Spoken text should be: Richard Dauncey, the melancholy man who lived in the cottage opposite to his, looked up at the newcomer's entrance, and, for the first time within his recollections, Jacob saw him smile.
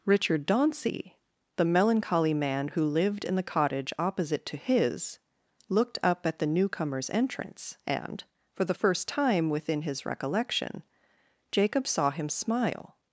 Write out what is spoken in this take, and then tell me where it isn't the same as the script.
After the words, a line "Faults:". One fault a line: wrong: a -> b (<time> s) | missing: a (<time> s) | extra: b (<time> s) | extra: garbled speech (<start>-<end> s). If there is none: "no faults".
Richard Dauncey, the melancholy man who lived in the cottage opposite to his, looked up at the newcomer's entrance, and, for the first time within his recollection, Jacob saw him smile.
Faults:
wrong: recollections -> recollection (10.0 s)